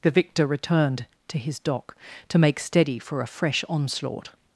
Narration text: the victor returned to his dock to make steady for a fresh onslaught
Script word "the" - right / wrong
right